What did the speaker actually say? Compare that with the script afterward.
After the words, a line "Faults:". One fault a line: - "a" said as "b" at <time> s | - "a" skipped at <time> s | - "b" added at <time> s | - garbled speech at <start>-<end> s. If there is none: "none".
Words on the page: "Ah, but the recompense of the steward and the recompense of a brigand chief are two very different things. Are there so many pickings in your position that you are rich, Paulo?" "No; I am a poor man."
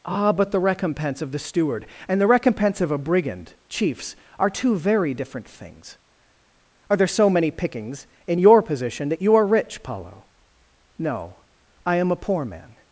"Ah, but the recompense of the steward and the recompense of a brigand chiefs are two very different things. Are there so many pickings in your position that you are rich, Paulo?" "No; I am a poor man."
Faults:
- "chief" said as "chiefs" at 3.7 s